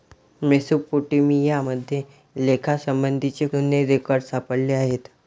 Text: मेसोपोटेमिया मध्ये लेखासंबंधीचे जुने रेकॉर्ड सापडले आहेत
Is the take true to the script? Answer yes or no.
yes